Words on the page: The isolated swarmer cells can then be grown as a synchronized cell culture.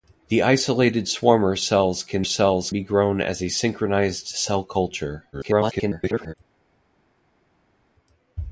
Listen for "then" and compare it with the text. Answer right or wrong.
wrong